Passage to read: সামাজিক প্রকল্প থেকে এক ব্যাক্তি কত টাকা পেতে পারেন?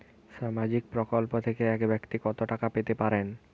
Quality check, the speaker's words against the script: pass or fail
pass